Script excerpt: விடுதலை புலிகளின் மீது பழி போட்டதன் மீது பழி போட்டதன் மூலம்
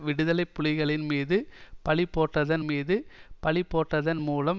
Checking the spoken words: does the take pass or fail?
pass